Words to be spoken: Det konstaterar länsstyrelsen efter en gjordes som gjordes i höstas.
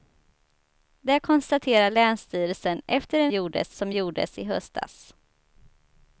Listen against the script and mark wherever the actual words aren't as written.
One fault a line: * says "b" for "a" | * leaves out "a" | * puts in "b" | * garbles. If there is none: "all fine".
all fine